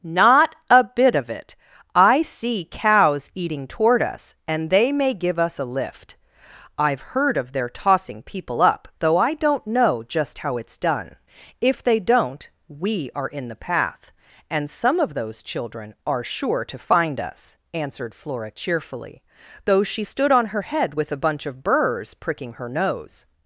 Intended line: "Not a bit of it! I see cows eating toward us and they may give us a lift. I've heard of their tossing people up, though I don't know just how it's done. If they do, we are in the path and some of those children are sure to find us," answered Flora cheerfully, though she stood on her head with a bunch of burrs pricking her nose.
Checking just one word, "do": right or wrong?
wrong